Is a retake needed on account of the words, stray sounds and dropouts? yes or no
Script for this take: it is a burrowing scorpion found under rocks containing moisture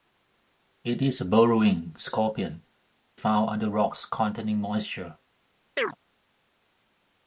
yes